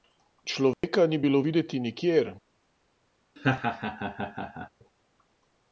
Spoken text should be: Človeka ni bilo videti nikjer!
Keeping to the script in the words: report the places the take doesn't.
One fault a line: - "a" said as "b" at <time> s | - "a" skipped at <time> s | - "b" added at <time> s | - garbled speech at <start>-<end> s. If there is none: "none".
none